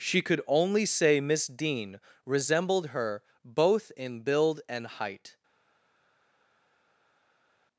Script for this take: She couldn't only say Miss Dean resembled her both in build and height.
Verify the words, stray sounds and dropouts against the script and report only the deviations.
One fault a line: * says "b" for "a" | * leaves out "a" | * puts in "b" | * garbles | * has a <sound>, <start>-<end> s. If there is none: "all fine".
* says "could" for "couldn't"